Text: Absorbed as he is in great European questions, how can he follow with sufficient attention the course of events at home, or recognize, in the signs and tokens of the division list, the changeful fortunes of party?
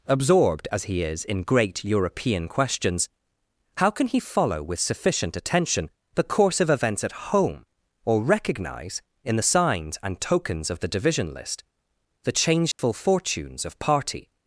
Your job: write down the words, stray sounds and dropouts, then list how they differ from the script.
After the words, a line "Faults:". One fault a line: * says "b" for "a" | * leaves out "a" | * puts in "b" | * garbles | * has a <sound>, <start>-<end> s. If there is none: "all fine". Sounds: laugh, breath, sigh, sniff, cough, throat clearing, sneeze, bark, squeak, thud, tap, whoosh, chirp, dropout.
Absorbed as he is in great European questions, how can he follow with sufficient attention the course of events at home, or recognize, in the signs and tokens of the division list, the changeful fortunes of party?
Faults:
* has a dropout, 12.7-12.8 s